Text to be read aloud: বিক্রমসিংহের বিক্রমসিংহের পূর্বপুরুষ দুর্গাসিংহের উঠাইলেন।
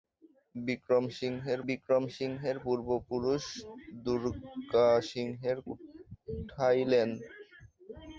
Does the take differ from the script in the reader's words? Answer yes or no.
no